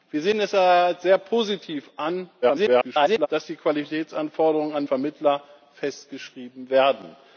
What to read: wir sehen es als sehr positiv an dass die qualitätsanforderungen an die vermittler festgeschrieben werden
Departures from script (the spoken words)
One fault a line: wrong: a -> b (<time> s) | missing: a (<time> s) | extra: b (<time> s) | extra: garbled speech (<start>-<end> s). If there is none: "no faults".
extra: garbled speech (2.4-3.3 s)
missing: die (4.8 s)